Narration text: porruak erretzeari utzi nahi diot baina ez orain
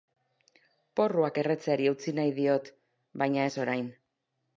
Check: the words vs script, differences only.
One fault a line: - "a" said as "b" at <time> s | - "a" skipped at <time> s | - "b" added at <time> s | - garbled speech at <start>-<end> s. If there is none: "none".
none